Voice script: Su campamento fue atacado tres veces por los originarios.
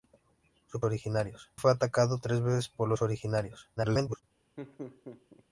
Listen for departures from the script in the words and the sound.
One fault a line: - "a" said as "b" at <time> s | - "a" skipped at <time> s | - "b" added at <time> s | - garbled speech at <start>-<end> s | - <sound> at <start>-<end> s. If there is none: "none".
- "campamento" said as "originarios" at 0.8 s
- garbled speech at 3.8-4.2 s
- laugh at 4.6-5.4 s